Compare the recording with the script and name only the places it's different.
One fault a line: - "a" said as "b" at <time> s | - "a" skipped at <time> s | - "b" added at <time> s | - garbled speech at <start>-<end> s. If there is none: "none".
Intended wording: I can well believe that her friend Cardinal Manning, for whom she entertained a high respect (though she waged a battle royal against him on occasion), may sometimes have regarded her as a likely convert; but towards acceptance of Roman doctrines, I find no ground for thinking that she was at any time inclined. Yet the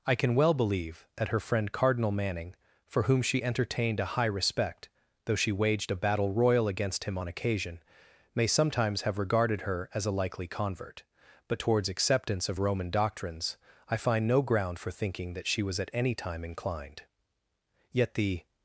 none